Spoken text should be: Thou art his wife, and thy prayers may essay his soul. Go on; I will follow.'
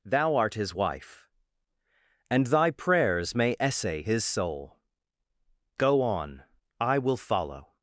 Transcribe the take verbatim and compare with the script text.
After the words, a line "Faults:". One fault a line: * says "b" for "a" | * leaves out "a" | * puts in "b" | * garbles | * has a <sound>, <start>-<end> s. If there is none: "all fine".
Thou art his wife, and thy prayers may essay his soul. Go on; I will follow.'
Faults:
all fine